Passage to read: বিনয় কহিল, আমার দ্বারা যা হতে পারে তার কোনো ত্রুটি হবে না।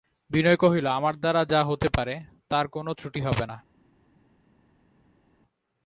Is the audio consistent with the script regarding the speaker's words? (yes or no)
yes